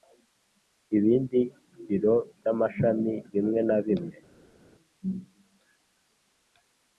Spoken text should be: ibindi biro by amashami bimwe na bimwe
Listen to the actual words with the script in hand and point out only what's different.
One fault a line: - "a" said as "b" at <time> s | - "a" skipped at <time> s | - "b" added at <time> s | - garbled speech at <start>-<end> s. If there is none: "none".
none